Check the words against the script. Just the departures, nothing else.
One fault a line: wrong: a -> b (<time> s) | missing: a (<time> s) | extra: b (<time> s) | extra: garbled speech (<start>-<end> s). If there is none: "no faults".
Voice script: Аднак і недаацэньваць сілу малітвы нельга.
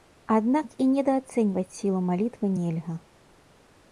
no faults